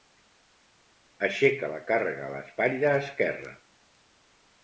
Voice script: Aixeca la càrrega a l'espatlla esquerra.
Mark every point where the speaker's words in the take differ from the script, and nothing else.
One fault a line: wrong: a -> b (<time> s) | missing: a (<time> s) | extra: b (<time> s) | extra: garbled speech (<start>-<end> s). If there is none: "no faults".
no faults